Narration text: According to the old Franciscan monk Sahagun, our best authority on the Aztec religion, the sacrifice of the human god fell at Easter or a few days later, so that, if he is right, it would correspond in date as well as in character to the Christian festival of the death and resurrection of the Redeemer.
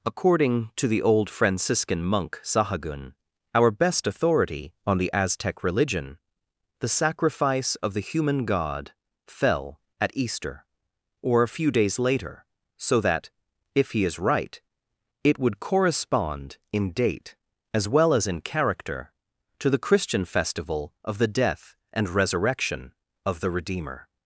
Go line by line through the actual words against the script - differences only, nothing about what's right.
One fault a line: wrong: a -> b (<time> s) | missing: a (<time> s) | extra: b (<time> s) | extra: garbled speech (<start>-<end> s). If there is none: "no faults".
no faults